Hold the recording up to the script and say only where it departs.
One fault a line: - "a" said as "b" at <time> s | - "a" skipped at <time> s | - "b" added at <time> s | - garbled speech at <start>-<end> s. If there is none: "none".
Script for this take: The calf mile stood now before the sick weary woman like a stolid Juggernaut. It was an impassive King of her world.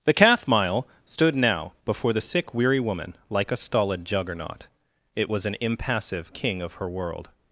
none